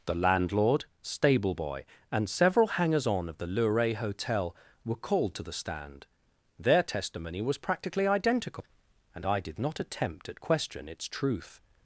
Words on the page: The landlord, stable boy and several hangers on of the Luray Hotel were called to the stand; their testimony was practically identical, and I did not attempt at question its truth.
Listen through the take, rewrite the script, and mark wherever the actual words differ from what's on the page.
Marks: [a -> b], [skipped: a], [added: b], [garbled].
The landlord, stable boy and several hangers on of the Luray Hotel were called to the stand; their testimony was practically identical, and I did not attempt at question its truth.